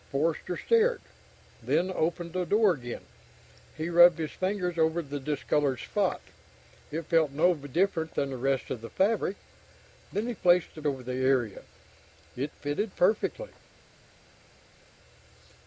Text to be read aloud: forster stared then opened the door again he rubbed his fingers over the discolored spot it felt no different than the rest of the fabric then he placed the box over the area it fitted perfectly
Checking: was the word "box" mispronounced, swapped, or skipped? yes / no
yes